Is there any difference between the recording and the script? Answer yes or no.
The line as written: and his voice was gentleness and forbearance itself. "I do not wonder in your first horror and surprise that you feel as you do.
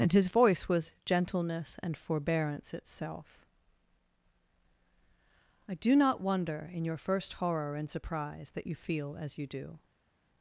no